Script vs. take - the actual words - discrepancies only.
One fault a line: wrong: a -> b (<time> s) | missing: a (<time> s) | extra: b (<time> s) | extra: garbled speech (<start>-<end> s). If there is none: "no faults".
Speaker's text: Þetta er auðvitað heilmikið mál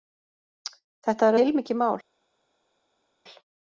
missing: auðvitað (1.4 s)